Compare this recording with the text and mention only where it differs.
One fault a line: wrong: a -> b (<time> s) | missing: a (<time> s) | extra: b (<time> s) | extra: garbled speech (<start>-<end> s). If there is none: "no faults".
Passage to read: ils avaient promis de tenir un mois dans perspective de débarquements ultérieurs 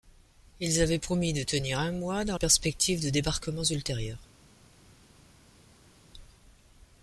no faults